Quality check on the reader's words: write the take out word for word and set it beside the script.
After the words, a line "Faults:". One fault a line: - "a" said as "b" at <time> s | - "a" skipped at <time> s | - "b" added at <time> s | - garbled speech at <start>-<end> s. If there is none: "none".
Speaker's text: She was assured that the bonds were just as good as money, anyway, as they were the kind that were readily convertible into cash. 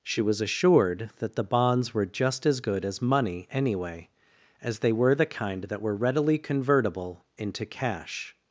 She was assured that the bonds were just as good as money, anyway, as they were the kind that were readily convertible into cash.
Faults:
none